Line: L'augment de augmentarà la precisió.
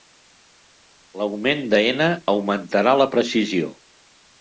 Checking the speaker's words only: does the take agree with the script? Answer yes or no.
no